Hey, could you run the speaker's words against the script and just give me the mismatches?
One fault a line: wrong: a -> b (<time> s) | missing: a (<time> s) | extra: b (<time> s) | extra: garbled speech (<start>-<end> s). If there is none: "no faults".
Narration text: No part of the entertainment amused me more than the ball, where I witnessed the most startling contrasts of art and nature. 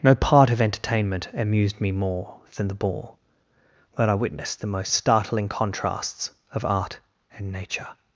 missing: the (0.6 s)